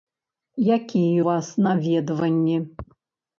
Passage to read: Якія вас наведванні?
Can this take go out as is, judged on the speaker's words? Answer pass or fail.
pass